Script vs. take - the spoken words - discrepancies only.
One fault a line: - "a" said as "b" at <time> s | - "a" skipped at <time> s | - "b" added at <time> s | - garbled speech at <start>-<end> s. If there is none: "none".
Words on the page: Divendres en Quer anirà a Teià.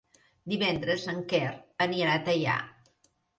none